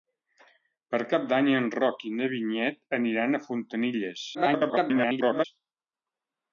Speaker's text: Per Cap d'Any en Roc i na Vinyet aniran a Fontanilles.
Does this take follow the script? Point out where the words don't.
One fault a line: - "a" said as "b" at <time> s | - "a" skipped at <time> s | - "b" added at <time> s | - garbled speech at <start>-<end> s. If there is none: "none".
- garbled speech at 4.3-5.4 s